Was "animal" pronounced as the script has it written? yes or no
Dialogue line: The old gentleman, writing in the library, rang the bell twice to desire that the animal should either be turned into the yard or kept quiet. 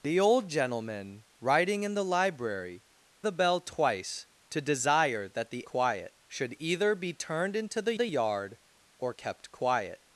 no